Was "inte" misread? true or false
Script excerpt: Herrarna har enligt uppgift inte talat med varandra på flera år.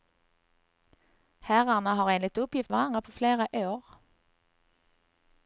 true